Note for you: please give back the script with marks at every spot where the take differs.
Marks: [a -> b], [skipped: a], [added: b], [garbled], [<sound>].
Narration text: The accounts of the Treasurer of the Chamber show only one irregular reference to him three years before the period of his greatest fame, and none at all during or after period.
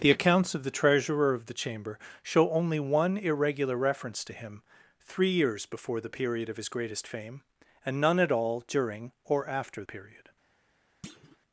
The accounts of the Treasurer of the Chamber show only one irregular reference to him three years before the period of his greatest fame, and none at all during or after period. [thud]